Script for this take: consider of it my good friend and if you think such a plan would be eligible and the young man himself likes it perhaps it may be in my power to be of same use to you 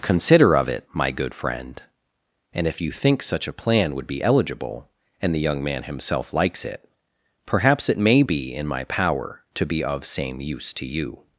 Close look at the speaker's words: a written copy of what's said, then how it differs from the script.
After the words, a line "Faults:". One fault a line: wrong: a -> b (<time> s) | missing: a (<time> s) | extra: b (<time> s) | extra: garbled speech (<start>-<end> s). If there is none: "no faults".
consider of it my good friend and if you think such a plan would be eligible and the young man himself likes it perhaps it may be in my power to be of same use to you
Faults:
no faults